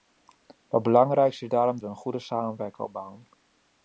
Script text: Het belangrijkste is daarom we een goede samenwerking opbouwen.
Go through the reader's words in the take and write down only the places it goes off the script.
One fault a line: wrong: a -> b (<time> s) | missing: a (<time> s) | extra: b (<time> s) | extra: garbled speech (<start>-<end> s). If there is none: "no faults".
no faults